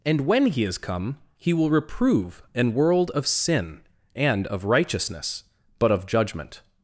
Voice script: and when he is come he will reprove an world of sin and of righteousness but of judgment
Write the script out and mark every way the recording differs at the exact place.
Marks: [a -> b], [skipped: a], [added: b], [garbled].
and when he is come he will reprove an world of sin and of righteousness but of judgment